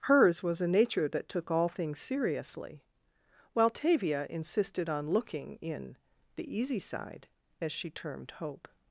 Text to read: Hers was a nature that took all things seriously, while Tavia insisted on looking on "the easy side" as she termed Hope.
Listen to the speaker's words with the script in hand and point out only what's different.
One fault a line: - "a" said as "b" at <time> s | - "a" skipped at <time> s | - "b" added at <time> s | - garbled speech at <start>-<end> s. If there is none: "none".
- "on" said as "in" at 5.6 s